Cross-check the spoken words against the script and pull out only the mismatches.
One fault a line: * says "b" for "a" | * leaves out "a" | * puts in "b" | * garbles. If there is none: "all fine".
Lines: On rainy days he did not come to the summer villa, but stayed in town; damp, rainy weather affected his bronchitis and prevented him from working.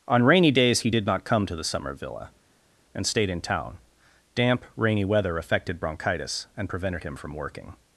* says "and" for "but"
* leaves out "his"